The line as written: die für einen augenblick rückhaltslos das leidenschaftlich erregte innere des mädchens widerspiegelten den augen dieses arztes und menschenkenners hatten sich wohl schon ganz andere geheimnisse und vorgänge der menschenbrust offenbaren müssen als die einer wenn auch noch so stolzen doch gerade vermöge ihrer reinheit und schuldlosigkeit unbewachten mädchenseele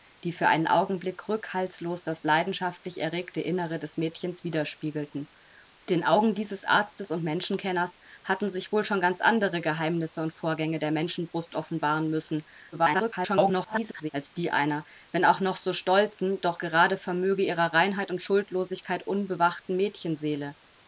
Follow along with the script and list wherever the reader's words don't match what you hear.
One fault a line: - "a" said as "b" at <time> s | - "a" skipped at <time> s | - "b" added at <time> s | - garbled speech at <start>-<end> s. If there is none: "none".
- garbled speech at 12.7-14.1 s